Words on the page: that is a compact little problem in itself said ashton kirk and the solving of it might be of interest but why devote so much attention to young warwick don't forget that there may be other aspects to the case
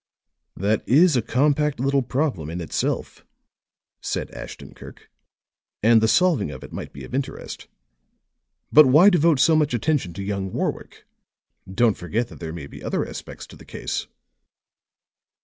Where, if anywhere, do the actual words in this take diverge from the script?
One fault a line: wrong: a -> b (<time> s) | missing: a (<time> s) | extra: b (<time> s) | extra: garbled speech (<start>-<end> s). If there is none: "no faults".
no faults